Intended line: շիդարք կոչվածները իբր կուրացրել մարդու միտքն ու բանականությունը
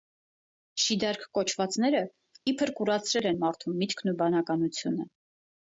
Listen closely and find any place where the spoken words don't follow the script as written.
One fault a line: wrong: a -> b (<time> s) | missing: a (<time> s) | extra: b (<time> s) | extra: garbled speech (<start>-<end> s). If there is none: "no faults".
extra: են (3.3 s)